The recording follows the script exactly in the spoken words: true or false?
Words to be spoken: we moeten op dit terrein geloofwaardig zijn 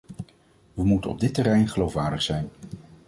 true